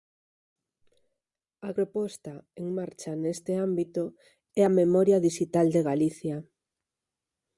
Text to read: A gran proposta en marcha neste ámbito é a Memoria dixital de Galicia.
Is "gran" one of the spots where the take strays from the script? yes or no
yes